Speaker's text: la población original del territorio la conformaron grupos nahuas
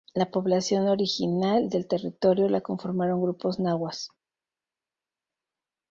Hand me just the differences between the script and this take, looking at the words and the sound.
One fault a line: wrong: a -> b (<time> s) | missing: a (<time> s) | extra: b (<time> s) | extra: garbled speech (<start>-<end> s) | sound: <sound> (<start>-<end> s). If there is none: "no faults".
no faults